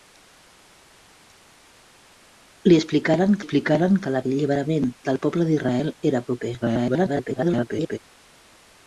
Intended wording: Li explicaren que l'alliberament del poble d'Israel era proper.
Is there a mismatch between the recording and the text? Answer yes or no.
yes